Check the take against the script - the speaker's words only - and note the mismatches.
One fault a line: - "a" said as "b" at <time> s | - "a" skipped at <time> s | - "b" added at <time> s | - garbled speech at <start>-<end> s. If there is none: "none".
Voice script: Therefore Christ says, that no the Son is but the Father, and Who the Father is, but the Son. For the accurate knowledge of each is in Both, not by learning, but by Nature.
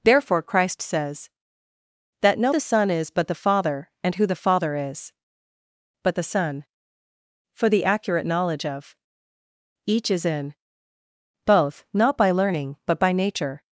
none